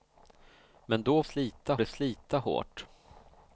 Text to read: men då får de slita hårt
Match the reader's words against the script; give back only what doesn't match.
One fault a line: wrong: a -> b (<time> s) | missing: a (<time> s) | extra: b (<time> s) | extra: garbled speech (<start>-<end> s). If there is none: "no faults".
wrong: får -> slita (1.2 s)